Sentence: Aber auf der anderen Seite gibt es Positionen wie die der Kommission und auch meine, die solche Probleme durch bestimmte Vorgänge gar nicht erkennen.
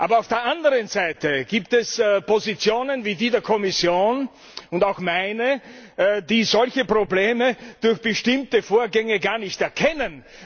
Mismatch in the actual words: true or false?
false